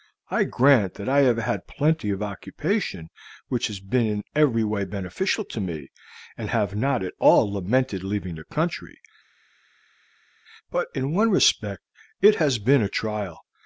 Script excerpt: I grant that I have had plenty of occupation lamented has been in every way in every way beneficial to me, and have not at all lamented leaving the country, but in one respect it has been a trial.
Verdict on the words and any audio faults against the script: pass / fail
fail